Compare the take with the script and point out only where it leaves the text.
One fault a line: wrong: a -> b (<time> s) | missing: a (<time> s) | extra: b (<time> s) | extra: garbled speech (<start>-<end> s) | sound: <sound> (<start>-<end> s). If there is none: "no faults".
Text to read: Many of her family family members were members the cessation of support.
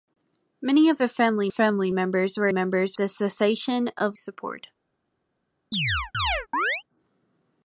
sound: chirp (5.7-6.8 s)